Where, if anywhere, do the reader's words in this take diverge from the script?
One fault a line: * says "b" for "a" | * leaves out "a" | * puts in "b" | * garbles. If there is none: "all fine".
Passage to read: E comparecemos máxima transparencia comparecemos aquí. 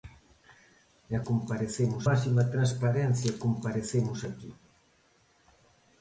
all fine